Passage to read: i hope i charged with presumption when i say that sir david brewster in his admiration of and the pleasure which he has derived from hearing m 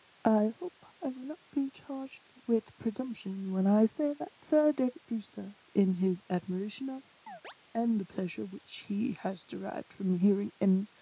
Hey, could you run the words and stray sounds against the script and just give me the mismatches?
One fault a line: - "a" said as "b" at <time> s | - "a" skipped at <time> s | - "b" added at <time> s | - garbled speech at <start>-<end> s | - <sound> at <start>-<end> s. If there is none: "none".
- "will not be" added at 1.1 s
- chirp at 7.3-7.5 s